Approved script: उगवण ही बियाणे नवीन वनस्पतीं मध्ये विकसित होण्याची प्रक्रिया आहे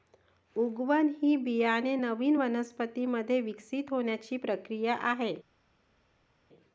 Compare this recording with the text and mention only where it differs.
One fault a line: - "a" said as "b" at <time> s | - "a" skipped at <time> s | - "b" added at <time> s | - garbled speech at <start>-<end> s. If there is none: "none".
none